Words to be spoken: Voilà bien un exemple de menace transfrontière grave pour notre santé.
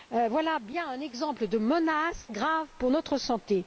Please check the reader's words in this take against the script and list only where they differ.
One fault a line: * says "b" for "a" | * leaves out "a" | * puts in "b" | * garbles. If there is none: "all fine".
* leaves out "transfrontière"